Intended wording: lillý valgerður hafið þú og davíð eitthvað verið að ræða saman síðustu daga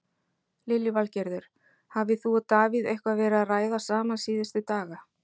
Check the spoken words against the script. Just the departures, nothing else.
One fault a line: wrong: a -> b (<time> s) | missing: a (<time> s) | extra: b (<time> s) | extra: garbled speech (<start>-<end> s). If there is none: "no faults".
no faults